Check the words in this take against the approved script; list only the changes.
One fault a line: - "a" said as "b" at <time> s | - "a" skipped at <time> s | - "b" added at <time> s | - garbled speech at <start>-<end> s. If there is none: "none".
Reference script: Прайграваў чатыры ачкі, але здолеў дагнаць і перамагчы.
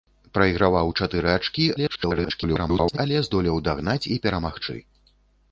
- garbled speech at 1.8-3.0 s